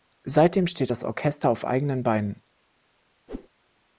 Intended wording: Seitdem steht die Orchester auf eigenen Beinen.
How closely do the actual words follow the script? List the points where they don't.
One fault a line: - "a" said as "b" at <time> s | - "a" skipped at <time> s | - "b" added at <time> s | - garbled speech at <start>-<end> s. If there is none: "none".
- "die" said as "das" at 0.9 s